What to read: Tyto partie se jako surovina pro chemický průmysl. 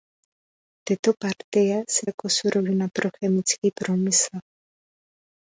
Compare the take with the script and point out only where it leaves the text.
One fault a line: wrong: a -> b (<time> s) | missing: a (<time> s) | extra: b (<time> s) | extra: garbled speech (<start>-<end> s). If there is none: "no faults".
no faults